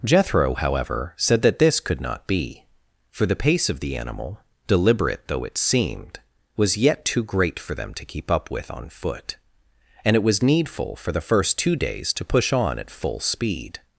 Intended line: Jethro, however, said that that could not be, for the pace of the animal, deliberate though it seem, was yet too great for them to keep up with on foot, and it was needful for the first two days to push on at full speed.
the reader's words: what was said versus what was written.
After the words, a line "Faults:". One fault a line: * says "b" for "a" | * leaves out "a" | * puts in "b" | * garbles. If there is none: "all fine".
Jethro, however, said that this could not be, for the pace of the animal, deliberate though it seemed, was yet too great for them to keep up with on foot, and it was needful for the first two days to push on at full speed.
Faults:
* says "this" for "that"
* says "seemed" for "seem"